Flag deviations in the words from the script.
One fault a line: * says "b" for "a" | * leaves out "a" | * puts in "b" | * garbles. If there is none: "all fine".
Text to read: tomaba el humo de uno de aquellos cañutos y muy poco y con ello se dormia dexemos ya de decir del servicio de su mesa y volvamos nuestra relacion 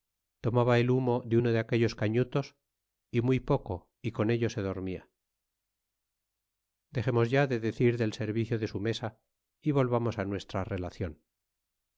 all fine